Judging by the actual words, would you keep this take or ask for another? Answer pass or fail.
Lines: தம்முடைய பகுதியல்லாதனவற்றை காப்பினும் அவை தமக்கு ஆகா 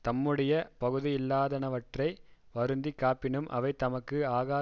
fail